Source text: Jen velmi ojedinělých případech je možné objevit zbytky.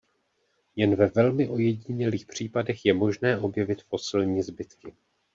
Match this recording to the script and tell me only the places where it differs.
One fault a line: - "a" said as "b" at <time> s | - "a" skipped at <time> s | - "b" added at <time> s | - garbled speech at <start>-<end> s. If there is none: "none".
- "ve" added at 0.9 s
- "fosilní" added at 3.8 s